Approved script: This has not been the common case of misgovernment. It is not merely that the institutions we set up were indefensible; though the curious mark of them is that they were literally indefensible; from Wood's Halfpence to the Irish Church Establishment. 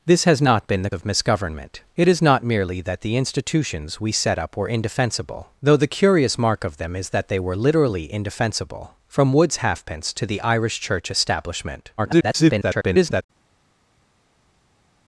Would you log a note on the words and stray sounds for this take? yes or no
yes